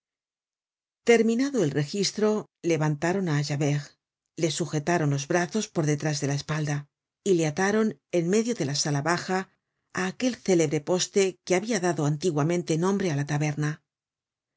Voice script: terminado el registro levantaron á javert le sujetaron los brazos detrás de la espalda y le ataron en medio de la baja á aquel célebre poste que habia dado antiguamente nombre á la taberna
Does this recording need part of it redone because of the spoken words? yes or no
yes